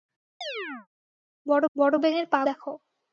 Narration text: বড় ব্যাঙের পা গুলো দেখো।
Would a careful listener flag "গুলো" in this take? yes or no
yes